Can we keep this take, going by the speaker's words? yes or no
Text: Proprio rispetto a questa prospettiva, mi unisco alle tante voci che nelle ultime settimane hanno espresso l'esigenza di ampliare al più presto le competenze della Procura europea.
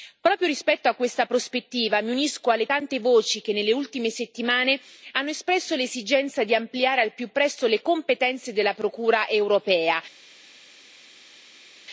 yes